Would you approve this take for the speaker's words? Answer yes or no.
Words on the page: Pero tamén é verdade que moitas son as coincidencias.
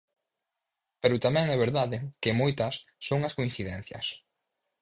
yes